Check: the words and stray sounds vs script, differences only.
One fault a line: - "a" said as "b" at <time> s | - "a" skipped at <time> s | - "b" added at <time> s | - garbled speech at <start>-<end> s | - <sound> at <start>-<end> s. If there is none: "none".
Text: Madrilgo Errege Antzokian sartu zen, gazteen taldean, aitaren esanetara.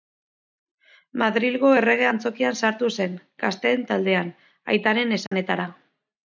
- dropout at 5.3-5.3 s